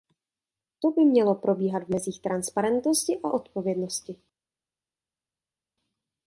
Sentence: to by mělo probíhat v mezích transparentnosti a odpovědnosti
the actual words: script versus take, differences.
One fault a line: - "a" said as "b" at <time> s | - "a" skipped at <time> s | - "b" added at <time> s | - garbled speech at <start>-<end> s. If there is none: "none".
none